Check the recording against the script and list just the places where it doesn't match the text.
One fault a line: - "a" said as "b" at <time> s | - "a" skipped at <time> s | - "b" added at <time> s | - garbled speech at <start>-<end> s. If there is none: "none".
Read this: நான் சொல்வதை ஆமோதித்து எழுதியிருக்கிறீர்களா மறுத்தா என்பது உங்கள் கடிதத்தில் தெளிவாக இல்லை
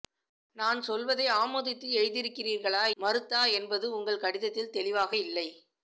none